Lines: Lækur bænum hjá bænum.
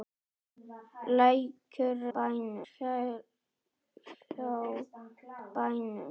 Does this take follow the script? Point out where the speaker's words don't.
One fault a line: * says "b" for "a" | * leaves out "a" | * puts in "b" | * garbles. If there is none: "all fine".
all fine